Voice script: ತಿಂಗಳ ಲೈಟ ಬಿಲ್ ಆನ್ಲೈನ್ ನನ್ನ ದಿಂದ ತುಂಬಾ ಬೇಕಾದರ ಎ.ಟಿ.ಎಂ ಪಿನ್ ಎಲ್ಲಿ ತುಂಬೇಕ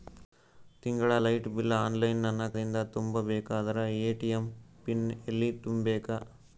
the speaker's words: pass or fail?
pass